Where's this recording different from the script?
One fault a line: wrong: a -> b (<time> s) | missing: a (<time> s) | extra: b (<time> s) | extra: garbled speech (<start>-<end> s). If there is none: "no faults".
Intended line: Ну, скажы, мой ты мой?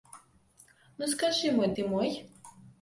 no faults